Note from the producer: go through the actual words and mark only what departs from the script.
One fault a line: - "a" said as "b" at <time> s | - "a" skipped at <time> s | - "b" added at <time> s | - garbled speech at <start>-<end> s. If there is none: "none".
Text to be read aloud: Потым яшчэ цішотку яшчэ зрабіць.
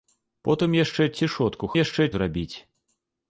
none